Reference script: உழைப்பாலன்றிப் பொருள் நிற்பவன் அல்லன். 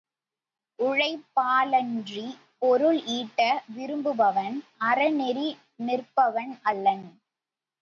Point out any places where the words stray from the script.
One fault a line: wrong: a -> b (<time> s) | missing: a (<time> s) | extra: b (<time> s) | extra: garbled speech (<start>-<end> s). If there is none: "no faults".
extra: ஈட்ட விரும்புபவன் அறநெறி (3.2 s)